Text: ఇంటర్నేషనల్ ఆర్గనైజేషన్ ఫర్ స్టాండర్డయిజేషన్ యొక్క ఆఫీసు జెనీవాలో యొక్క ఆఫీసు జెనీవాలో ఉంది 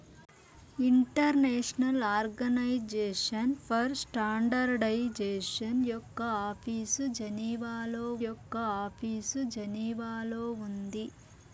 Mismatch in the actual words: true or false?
false